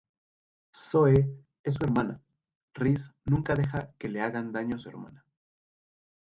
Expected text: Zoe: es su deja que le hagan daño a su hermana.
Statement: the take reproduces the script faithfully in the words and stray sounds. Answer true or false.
false